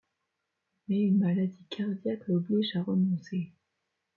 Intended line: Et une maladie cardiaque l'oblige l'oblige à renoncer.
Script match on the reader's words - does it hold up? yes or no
no